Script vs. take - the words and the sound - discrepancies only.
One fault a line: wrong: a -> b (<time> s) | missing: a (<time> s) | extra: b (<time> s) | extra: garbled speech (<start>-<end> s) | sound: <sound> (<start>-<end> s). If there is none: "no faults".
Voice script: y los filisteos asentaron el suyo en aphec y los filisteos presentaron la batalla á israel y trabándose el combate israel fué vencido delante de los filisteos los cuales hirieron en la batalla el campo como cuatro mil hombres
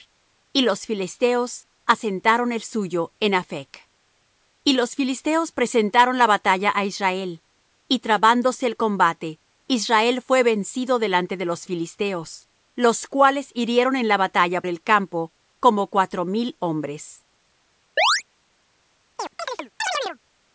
sound: chirp (18.0-18.2 s)
sound: chirp (19.2-20.2 s)